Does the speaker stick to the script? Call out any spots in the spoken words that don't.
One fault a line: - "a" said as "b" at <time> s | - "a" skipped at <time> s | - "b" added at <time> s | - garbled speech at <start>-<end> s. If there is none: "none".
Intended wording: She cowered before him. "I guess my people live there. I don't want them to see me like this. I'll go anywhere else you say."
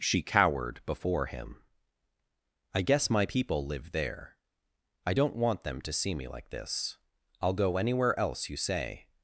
none